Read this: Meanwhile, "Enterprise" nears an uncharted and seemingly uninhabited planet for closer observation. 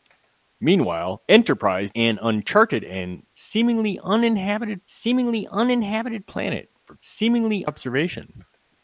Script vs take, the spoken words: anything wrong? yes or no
yes